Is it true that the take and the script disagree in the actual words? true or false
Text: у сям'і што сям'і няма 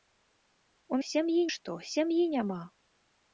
false